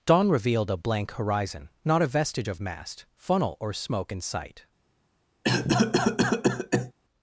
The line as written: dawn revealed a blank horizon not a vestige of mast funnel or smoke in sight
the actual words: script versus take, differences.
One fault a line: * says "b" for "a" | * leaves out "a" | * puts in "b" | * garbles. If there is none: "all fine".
all fine